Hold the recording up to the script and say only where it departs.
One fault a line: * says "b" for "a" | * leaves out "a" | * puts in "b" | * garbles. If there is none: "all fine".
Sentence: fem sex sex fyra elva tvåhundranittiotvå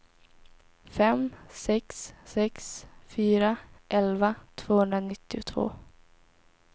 all fine